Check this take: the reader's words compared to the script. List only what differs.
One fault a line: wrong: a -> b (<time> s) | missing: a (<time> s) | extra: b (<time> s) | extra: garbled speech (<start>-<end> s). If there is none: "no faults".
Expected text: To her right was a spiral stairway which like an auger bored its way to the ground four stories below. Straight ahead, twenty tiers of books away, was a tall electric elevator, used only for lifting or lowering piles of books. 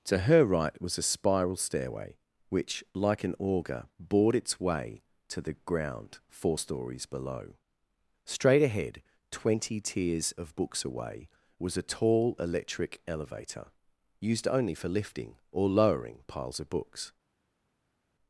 no faults